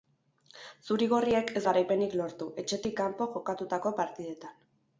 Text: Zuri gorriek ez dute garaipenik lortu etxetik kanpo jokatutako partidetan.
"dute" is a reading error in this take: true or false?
true